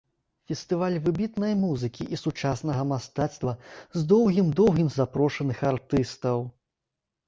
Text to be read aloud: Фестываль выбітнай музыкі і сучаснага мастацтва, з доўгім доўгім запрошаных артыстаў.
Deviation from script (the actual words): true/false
false